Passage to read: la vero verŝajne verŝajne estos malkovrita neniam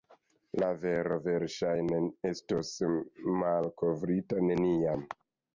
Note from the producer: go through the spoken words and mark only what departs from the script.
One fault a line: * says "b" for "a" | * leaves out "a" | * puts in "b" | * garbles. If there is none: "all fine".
* leaves out "verŝajne"